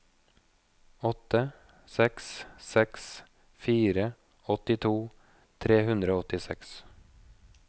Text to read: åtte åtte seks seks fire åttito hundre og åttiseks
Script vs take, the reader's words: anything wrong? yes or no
yes